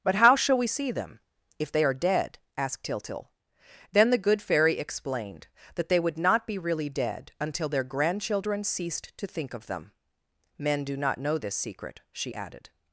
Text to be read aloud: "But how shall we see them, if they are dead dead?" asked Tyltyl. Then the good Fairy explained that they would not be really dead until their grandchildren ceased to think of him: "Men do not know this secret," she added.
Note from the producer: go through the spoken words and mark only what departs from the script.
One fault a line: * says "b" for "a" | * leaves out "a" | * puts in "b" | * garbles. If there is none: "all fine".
* leaves out "dead"
* says "them" for "him"